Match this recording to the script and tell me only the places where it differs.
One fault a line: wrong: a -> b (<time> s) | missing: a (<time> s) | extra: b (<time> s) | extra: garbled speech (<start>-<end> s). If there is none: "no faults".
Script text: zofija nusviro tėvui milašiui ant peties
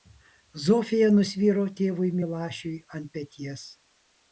no faults